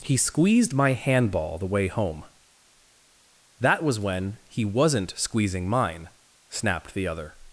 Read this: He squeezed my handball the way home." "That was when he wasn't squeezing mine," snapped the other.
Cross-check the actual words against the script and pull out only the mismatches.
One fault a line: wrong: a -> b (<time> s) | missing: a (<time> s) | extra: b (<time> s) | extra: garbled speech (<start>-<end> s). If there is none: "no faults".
no faults